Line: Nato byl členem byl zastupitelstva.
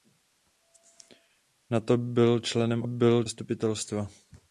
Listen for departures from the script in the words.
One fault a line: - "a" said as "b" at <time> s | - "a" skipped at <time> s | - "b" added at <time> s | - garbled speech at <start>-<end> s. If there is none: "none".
none